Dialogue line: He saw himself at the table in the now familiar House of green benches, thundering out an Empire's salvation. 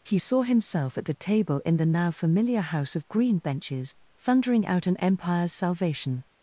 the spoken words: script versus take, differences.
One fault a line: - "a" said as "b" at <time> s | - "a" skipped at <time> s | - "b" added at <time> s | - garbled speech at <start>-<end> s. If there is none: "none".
none